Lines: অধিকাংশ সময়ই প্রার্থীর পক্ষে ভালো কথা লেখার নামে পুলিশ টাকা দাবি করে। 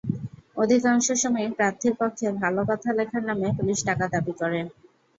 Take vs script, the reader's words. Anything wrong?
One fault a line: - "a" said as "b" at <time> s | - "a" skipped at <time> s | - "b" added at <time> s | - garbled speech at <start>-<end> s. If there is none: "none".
none